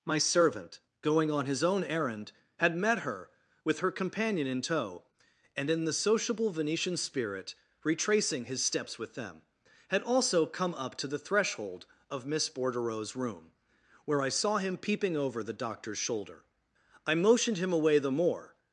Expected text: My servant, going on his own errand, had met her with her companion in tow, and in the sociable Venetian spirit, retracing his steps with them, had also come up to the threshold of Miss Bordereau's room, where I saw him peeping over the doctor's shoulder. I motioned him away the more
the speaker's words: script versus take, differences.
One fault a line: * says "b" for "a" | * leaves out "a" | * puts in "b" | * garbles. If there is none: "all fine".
all fine